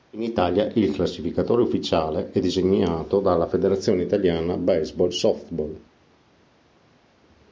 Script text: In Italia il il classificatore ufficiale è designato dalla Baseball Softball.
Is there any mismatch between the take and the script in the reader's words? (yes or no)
yes